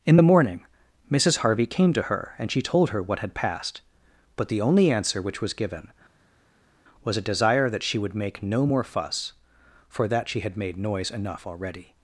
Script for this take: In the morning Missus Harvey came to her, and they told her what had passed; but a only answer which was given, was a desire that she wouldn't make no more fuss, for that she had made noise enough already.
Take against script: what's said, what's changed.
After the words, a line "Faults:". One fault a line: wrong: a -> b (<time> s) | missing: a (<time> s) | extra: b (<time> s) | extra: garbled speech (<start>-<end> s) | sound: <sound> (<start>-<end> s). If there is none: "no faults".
In the morning Missus Harvey came to her, and she told her what had passed; but the only answer which was given, was a desire that she would make no more fuss, for that she had made noise enough already.
Faults:
wrong: they -> she (2.5 s)
wrong: a -> the (4.5 s)
wrong: wouldn't -> would (8.0 s)